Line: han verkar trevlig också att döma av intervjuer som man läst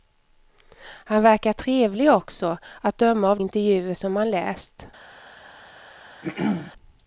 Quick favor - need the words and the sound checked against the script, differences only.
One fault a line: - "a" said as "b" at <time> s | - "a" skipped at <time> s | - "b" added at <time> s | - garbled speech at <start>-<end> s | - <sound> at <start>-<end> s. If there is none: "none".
- throat clearing at 6.2-6.7 s